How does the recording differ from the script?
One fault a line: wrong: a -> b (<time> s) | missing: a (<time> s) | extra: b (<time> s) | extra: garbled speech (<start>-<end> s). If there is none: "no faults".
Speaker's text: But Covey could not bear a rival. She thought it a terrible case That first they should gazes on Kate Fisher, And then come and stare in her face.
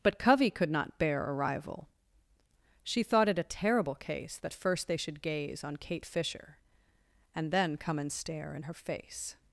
wrong: gazes -> gaze (5.2 s)